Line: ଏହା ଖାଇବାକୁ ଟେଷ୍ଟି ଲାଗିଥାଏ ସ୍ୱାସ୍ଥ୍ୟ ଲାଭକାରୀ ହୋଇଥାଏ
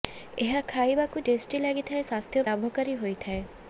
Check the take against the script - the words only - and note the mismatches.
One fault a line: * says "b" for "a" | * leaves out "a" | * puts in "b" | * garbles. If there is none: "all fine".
all fine